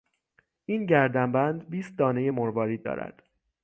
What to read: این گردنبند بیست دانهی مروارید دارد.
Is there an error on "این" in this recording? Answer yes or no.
no